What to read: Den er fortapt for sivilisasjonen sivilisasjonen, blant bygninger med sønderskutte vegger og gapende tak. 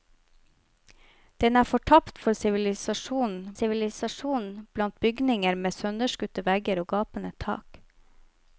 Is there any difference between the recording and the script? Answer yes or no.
no